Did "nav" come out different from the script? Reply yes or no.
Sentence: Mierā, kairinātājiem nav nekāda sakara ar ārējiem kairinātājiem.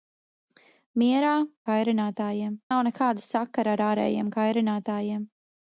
no